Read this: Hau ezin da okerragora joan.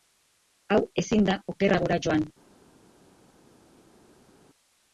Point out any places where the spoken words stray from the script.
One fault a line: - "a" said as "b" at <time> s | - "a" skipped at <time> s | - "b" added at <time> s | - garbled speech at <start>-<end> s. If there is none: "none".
none